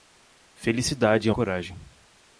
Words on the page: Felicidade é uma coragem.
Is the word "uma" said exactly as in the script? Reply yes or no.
no